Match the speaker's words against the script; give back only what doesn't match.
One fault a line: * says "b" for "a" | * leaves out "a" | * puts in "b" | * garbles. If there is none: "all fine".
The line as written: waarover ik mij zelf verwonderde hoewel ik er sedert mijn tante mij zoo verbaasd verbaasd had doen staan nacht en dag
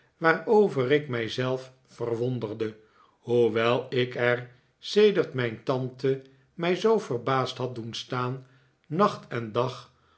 * leaves out "verbaasd"